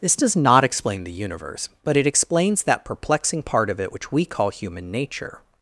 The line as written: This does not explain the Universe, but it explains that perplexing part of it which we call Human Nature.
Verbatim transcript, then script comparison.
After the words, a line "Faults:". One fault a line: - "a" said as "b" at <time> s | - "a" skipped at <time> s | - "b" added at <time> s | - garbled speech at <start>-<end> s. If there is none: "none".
This does not explain the Universe, but it explains that perplexing part of it which we call Human Nature.
Faults:
none